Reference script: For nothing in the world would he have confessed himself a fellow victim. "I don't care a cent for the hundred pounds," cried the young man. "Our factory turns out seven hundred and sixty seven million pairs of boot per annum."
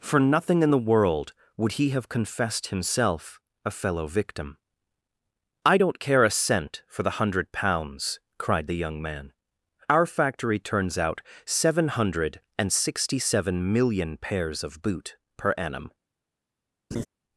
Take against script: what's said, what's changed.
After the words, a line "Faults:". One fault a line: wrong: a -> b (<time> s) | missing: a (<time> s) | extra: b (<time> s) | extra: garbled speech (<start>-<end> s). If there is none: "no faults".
For nothing in the world would he have confessed himself a fellow victim. "I don't care a cent for the hundred pounds," cried the young man. "Our factory turns out seven hundred and sixty seven million pairs of boot per annum."
Faults:
no faults